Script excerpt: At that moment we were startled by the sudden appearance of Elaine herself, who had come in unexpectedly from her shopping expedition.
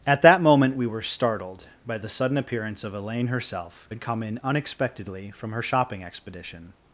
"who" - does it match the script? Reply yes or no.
no